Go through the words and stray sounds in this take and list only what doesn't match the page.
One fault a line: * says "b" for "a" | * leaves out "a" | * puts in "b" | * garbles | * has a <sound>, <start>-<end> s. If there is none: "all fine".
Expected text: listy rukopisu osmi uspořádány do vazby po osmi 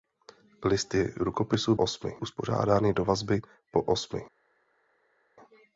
all fine